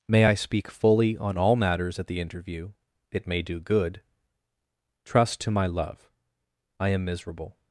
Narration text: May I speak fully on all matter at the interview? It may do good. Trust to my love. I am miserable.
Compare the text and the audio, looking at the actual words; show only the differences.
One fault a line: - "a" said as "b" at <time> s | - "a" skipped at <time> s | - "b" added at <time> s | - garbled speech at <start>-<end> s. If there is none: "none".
- "matter" said as "matters" at 1.6 s